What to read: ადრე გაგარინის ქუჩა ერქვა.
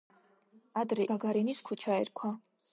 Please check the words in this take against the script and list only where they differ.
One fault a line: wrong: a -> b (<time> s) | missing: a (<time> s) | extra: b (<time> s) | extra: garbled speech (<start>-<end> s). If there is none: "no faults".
no faults